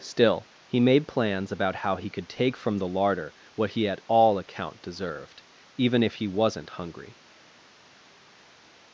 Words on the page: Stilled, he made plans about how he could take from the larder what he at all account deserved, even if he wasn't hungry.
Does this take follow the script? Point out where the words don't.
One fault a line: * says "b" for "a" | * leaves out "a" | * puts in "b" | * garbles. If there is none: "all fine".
* says "Still" for "Stilled"